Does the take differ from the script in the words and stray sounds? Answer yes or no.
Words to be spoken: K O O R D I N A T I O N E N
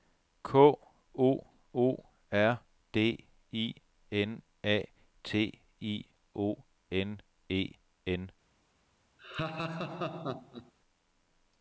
yes